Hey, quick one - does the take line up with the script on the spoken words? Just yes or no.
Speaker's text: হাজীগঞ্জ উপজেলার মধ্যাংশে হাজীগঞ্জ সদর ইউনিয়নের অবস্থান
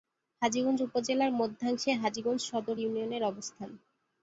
yes